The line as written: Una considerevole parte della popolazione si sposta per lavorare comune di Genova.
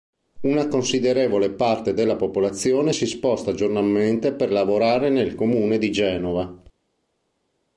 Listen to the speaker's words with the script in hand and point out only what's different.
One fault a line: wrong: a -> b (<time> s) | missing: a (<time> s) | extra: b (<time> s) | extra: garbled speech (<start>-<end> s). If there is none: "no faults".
extra: giornalmente (3.5 s)
extra: nel (5.1 s)